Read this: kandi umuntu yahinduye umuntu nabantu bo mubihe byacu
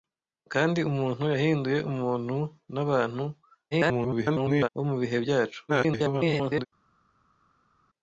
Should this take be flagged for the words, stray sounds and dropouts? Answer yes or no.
yes